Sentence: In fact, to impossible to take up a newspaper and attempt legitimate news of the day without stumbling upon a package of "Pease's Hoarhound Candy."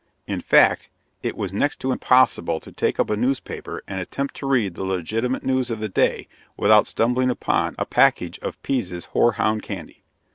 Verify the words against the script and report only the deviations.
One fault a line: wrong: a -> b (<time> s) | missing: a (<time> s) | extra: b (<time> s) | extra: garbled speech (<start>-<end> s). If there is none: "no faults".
extra: it was next (1.2 s)
extra: to read the (4.3 s)